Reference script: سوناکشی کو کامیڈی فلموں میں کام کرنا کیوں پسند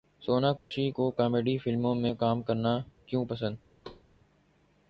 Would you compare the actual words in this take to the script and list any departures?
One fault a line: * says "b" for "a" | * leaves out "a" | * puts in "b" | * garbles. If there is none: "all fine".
all fine